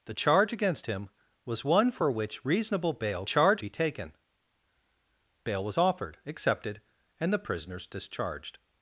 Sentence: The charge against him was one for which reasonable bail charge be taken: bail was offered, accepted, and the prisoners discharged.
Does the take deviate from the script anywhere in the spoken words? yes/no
no